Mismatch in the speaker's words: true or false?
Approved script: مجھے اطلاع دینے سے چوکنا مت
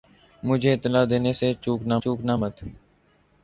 true